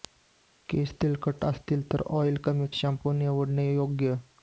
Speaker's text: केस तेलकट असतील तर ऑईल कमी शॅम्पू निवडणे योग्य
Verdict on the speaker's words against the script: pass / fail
pass